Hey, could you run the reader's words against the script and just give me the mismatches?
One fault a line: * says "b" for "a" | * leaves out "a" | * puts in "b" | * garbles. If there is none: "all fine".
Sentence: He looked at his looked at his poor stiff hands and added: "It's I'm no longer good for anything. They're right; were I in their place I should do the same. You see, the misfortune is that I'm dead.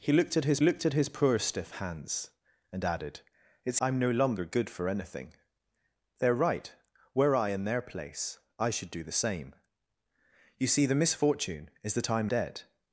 all fine